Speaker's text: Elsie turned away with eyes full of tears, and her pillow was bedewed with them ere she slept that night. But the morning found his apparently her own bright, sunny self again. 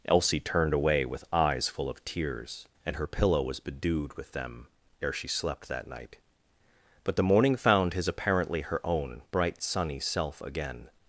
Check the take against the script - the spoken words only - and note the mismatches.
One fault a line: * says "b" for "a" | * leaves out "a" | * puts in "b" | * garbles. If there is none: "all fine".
all fine